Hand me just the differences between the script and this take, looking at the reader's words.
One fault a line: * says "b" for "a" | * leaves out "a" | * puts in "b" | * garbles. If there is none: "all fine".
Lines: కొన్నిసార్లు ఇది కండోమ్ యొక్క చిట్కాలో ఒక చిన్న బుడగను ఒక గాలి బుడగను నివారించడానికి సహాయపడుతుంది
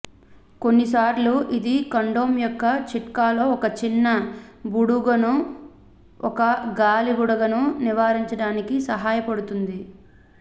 all fine